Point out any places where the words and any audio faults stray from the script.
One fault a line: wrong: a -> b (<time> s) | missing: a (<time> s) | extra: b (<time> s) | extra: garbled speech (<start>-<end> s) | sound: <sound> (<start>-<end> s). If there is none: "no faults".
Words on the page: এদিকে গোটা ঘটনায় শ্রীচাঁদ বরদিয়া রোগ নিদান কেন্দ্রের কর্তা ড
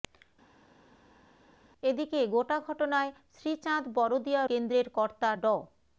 missing: রোগ নিদান (4.4 s)